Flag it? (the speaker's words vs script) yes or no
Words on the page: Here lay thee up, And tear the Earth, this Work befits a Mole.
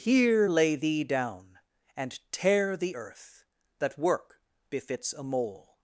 yes